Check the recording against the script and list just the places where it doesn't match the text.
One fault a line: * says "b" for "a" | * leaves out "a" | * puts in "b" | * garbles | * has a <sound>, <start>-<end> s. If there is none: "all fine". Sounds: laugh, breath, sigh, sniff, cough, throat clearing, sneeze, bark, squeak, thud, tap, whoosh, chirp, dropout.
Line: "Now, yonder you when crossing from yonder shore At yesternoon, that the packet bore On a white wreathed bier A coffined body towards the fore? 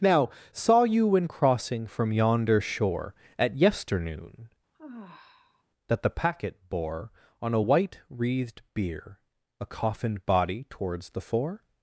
* says "saw" for "yonder"
* has a sigh, 4.7-5.6 s